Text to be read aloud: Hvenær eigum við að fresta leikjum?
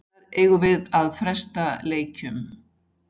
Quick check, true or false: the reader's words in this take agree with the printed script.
true